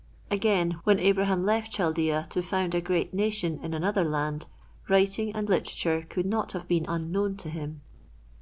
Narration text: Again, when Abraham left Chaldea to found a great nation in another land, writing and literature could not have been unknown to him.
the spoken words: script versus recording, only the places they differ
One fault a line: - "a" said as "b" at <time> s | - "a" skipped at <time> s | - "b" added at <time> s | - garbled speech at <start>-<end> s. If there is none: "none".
none